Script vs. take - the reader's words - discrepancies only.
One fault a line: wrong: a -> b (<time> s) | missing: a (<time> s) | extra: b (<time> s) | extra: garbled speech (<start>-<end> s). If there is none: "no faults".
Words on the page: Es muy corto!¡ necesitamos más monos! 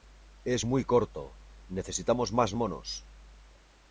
no faults